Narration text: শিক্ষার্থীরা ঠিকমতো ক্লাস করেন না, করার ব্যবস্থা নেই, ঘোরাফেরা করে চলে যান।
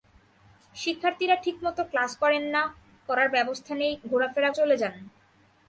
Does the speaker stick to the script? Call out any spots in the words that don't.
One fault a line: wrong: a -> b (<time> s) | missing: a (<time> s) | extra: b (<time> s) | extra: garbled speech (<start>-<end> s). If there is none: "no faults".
missing: করে (4.5 s)